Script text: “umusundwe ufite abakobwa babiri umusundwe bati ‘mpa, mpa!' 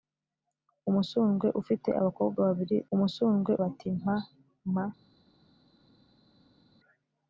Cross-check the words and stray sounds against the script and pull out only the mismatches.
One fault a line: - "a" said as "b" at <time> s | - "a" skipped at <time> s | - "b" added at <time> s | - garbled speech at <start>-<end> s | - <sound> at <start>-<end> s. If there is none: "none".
none